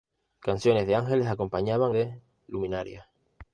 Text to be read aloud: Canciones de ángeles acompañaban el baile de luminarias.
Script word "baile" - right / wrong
wrong